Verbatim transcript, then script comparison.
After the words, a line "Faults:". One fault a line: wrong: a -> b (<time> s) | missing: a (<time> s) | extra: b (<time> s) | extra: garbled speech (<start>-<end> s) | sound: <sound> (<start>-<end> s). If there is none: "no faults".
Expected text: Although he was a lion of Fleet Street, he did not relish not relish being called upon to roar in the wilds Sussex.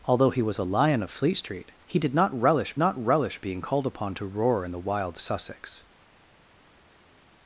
Although he was a lion of Fleet Street, he did not relish not relish being called upon to roar in the wilds Sussex.
Faults:
no faults